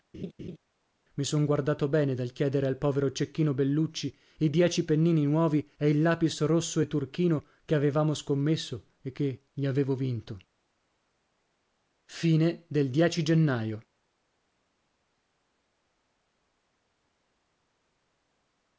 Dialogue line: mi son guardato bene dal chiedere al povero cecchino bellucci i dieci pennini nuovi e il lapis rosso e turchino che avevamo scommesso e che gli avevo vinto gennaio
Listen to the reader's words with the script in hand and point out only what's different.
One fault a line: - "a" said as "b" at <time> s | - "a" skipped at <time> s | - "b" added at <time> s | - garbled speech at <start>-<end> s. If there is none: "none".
none